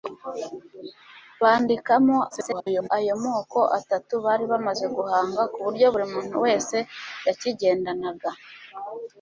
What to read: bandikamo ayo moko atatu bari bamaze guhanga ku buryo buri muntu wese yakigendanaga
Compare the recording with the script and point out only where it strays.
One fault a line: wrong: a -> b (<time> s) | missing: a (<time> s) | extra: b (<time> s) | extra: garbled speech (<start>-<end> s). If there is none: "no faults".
extra: garbled speech (2.3-2.9 s)